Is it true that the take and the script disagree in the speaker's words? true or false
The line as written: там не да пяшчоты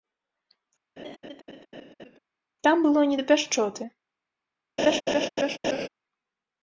true